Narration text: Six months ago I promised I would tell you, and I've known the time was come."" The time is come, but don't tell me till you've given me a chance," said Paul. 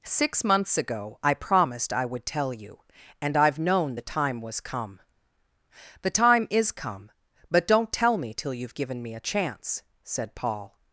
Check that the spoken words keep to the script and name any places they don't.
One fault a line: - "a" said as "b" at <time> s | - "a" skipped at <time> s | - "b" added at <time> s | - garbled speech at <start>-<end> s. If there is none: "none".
none